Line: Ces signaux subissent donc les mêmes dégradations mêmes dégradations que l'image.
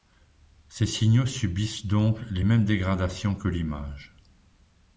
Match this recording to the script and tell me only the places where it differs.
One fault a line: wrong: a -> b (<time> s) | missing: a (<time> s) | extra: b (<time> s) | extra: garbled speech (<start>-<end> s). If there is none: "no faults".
missing: mêmes dégradations (3.4 s)